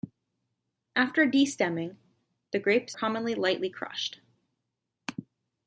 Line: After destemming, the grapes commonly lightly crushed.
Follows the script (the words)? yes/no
yes